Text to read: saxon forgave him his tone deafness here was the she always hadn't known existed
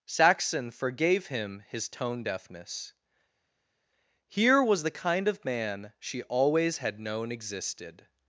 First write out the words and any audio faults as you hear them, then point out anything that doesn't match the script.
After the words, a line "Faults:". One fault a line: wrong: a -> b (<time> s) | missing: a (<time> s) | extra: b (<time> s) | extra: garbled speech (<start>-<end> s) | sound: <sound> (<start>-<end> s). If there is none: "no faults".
saxon forgave him his tone deafness here was the kind of man she always had known existed
Faults:
extra: kind of man (4.9 s)
wrong: hadn't -> had (6.8 s)